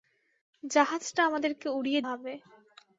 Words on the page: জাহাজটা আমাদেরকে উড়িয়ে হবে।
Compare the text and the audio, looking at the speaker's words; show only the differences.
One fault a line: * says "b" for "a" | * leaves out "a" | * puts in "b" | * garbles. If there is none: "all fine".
all fine